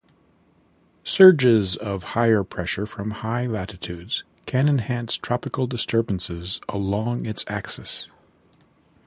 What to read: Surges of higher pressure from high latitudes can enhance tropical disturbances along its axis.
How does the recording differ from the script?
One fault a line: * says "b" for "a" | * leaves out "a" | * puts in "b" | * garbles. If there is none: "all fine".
all fine